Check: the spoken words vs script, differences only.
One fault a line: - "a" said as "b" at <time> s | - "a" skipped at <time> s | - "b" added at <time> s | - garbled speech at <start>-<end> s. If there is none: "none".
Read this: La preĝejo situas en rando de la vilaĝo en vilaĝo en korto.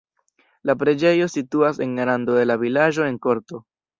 - "vilaĝo en" skipped at 3.2 s